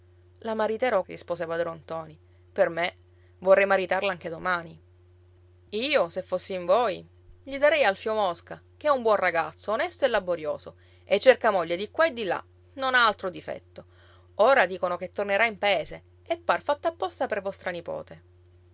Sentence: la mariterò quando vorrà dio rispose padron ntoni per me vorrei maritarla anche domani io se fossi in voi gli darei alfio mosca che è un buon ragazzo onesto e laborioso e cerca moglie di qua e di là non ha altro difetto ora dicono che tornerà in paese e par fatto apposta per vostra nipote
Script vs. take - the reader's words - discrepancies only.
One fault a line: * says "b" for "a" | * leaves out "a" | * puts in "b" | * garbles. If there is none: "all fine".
* leaves out "quando vorrà dio"